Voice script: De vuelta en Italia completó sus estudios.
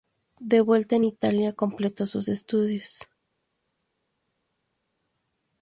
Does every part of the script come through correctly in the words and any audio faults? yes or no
yes